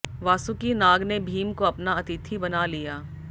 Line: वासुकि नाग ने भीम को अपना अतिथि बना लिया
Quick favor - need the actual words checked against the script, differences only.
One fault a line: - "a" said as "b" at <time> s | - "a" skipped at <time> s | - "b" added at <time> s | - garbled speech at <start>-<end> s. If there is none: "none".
none